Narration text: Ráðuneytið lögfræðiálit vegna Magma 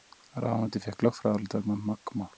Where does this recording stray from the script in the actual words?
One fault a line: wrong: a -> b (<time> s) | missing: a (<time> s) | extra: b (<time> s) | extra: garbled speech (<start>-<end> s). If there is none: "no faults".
extra: fékk (0.9 s)